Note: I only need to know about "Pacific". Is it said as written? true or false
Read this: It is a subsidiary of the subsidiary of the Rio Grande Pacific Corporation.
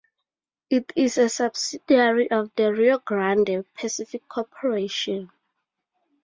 true